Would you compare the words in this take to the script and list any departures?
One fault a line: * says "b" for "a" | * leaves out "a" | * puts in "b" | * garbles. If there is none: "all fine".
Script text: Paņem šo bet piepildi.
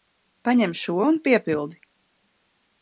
* says "un" for "bet"